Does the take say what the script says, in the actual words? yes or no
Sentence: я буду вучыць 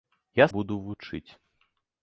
yes